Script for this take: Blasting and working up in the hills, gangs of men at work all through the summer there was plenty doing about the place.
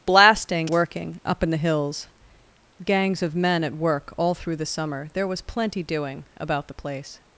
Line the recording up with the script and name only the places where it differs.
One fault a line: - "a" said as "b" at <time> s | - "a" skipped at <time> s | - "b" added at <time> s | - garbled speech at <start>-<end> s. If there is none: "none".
- "and" skipped at 0.7 s